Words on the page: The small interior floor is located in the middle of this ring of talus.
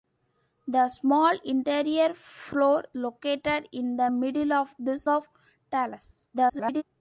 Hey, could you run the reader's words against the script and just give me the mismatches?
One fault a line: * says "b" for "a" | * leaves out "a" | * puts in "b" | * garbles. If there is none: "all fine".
* leaves out "is"
* leaves out "ring"
* garbles